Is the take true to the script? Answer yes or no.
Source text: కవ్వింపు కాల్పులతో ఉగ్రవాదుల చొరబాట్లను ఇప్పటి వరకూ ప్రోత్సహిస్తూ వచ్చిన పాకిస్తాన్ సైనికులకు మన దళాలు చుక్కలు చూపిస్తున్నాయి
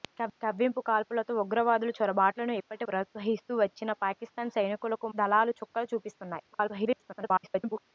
no